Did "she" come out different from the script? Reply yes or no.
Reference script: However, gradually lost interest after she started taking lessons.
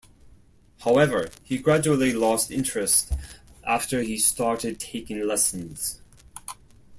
yes